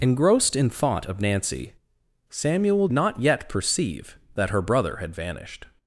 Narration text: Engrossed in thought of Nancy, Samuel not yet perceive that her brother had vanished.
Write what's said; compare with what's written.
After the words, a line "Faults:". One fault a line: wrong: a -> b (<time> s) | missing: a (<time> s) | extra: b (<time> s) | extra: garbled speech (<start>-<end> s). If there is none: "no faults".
Engrossed in thought of Nancy, Samuel not yet perceive that her brother had vanished.
Faults:
no faults